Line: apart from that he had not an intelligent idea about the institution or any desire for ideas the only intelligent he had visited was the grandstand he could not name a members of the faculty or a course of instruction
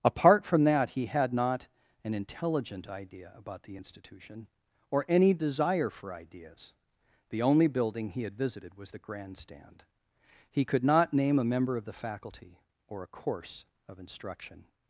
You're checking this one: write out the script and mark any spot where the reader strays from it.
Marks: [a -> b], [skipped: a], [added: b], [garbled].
apart from that he had not an intelligent idea about the institution or any desire for ideas the only [intelligent -> building] he had visited was the grandstand he could not name a [members -> member] of the faculty or a course of instruction